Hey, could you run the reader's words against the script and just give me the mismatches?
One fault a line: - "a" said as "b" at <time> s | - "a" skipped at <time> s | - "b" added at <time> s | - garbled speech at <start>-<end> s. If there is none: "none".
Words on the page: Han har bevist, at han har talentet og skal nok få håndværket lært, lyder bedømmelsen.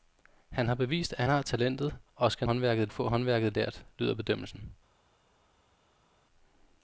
- "han" skipped at 1.2 s
- "nok" said as "håndværket" at 2.4 s